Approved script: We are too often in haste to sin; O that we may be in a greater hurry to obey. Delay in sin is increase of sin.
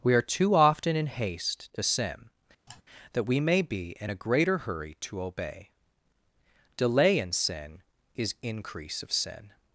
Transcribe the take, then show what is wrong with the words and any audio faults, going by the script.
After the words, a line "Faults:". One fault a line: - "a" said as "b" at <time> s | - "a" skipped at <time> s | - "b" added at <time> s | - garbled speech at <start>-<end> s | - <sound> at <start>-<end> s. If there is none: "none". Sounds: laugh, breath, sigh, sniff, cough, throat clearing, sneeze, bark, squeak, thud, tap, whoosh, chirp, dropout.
We are too often in haste to sin; that we may be in a greater hurry to obey. Delay in sin is increase of sin.
Faults:
- "O" skipped at 2.3 s
- sigh at 2.7-2.8 s